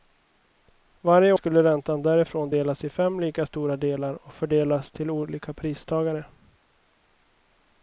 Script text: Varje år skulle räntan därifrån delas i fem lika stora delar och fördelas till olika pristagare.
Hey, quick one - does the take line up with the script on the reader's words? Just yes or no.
no